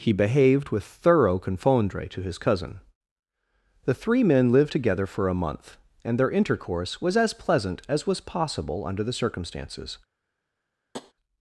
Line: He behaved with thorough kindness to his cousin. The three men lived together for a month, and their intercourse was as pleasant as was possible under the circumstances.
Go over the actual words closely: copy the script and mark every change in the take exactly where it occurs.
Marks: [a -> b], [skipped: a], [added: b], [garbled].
He behaved with thorough [kindness -> confondre] to his cousin. The three men lived together for a month, and their intercourse was as pleasant as was possible under the circumstances.